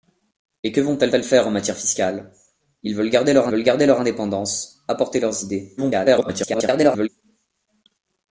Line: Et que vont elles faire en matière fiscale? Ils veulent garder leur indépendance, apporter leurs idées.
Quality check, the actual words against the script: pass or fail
fail